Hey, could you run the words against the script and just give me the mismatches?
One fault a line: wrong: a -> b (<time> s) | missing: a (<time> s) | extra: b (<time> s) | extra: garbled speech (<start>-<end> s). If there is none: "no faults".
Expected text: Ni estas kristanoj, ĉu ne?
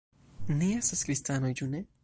no faults